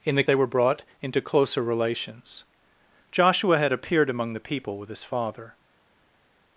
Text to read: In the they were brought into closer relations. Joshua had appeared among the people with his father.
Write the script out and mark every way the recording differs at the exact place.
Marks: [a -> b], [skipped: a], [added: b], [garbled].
In the they were brought into closer relations. Joshua had appeared among the people with his father.